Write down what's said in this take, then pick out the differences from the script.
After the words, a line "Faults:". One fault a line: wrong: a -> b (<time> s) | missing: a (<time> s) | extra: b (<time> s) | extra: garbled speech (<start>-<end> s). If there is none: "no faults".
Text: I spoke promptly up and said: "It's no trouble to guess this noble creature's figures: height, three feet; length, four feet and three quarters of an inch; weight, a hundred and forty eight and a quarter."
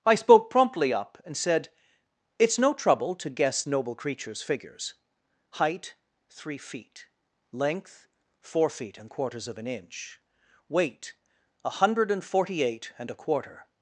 I spoke promptly up and said: "It's no trouble to guess noble creature's figures: height, three feet; length, four feet and quarters of an inch; weight, a hundred and forty eight and a quarter."
Faults:
missing: this (3.6 s)
missing: three (9.1 s)